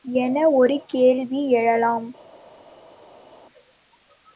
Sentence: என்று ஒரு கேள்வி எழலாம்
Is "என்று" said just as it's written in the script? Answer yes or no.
no